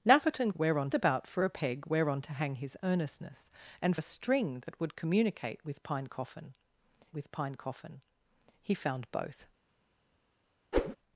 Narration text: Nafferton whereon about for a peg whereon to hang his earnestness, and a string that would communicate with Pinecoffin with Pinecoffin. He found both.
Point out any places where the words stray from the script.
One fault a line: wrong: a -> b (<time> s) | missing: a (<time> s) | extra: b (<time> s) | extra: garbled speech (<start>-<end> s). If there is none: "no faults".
no faults